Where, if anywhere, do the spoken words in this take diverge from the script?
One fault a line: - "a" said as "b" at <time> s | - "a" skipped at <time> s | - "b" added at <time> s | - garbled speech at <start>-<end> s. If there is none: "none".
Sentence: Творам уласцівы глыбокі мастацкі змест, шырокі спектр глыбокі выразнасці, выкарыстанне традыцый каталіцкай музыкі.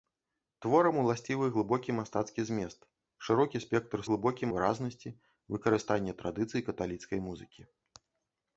none